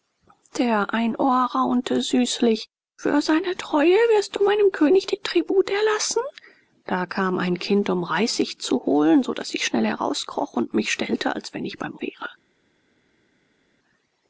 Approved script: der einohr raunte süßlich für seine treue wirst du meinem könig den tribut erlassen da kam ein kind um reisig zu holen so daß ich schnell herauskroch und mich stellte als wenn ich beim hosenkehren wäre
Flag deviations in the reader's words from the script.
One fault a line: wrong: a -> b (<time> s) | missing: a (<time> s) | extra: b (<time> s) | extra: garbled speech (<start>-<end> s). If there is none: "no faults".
missing: hosenkehren (12.0 s)